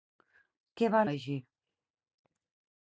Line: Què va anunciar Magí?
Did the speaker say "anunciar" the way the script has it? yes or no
no